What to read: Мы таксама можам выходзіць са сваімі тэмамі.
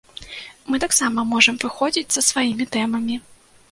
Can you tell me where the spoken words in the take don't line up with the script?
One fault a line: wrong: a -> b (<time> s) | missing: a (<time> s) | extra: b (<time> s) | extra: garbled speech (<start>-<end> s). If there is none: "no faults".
no faults